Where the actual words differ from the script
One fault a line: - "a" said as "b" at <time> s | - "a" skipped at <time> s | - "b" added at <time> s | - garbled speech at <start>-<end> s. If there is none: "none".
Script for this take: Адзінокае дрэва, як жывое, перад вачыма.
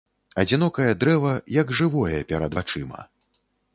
none